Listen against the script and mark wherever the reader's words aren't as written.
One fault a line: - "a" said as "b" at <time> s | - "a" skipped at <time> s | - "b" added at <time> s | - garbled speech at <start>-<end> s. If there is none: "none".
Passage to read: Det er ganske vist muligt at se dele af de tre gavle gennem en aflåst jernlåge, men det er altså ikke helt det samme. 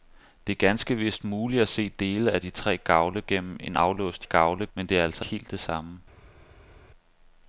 - "jernlåge" said as "gavle" at 4.2 s
- "ikke" skipped at 5.2 s